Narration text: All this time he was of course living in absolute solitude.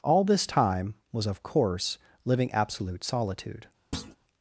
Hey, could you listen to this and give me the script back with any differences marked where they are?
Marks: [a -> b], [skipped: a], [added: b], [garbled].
All this time [skipped: he] was of course living [skipped: in] absolute solitude.